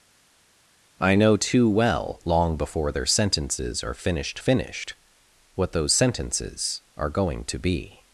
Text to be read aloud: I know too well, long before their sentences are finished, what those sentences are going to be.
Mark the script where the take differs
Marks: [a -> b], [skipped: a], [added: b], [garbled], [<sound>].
I know too well, long before their sentences are finished, [added: finished] what those sentences are going to be.